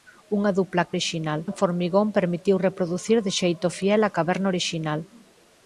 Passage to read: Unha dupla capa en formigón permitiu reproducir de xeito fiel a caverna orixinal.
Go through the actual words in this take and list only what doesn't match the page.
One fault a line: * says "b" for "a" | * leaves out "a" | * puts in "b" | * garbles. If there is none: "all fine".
* says "orixinal" for "capa"